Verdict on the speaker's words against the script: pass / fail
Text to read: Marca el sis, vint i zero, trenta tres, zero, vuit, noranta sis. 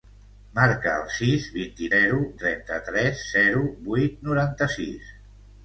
pass